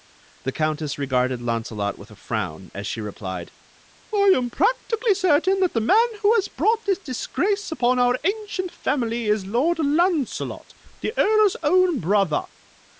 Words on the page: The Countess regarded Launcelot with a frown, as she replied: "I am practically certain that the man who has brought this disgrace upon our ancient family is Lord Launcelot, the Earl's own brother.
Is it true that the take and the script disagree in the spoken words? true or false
false